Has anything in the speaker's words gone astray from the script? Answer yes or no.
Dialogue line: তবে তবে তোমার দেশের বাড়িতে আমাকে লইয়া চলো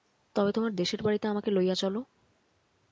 yes